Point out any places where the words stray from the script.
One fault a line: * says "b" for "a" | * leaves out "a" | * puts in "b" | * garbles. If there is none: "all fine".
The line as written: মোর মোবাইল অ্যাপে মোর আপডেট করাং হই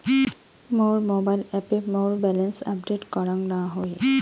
* puts in "ব্যালেন্স"
* puts in "না"